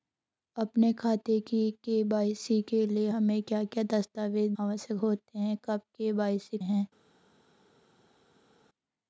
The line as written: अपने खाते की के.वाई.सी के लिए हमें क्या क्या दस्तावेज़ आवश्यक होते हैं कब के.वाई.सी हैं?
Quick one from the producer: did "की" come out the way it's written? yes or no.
yes